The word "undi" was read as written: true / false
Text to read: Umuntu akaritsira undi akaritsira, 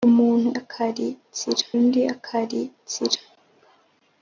true